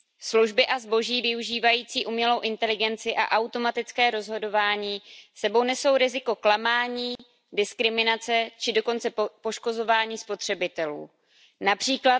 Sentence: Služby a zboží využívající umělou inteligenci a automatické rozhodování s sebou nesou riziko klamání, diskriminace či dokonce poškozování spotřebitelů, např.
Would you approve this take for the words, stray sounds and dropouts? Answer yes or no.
no